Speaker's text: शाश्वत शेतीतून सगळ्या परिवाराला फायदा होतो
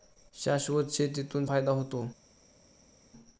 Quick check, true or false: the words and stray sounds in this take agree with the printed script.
false